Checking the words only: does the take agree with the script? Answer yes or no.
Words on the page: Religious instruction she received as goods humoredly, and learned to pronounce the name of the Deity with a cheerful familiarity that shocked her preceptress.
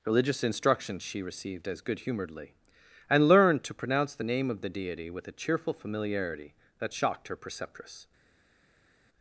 no